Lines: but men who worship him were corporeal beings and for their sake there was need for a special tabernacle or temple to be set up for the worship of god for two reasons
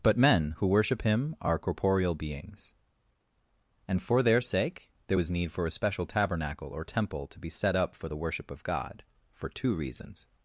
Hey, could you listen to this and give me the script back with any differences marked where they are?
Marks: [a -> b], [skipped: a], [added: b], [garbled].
but men who worship him [were -> are] corporeal beings and for their sake there was need for a special tabernacle or temple to be set up for the worship of god for two reasons